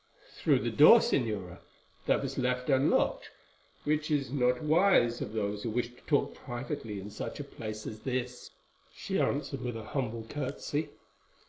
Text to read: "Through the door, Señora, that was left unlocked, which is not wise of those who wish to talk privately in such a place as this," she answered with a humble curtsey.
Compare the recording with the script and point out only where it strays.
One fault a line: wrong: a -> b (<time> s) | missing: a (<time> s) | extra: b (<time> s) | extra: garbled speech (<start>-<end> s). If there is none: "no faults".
no faults